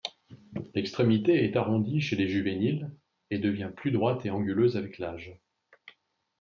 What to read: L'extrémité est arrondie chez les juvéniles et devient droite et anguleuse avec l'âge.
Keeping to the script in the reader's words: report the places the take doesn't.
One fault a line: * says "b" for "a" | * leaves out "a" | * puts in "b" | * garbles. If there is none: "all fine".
* puts in "plus"